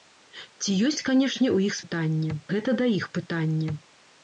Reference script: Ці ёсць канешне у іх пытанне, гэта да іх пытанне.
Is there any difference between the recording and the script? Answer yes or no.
no